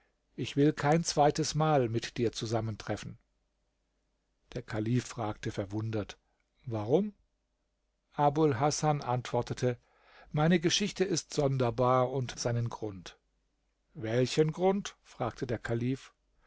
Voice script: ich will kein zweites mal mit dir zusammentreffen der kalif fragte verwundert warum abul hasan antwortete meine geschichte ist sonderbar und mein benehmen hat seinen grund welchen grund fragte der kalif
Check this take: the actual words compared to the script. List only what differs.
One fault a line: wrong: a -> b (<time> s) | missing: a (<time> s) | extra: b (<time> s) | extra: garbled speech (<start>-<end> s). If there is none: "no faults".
missing: mein benehmen hat (12.4 s)